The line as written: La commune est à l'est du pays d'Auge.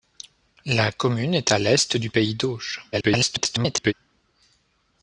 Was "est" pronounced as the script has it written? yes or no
yes